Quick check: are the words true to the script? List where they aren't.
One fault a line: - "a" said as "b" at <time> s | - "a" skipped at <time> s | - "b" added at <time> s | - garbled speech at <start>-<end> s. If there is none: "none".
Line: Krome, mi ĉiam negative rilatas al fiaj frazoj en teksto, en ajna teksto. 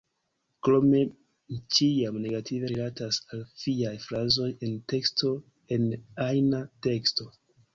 none